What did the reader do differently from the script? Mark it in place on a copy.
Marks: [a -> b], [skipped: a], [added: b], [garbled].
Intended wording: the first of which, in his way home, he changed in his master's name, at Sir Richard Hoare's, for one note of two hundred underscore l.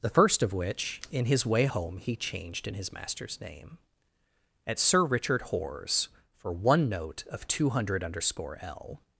the first of which, in his way home, he changed in his master's name, at Sir Richard Hoare's, for one note of two hundred underscore l.